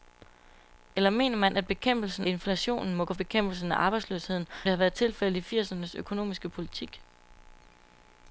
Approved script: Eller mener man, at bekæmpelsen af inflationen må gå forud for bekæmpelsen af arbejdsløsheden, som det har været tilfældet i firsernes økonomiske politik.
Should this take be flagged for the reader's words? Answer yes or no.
yes